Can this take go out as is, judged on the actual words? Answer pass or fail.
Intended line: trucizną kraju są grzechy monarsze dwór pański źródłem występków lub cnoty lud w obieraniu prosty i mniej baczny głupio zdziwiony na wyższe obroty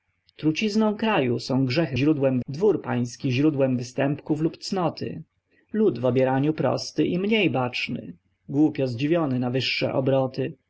fail